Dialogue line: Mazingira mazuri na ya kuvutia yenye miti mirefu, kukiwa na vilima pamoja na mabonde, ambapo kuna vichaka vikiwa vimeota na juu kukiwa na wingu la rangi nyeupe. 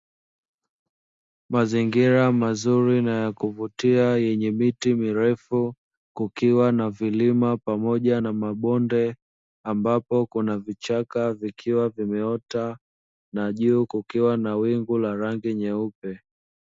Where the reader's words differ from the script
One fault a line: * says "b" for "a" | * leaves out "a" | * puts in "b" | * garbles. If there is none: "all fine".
all fine